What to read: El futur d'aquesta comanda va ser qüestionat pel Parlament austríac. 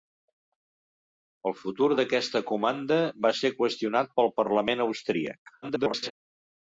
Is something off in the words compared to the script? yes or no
yes